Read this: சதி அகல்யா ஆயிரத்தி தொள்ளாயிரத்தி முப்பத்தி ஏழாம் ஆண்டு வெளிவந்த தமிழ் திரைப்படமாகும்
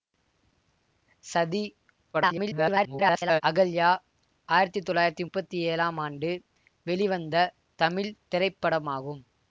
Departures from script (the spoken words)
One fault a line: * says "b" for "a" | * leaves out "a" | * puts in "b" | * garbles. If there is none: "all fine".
* garbles